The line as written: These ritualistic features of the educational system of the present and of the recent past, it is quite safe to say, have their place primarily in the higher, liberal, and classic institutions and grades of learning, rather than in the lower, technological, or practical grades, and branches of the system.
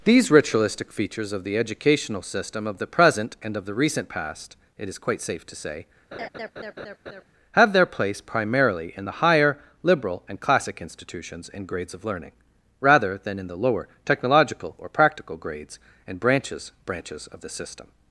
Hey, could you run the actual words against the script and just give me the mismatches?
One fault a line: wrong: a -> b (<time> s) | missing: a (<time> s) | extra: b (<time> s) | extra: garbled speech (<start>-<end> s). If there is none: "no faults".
extra: branches (16.8 s)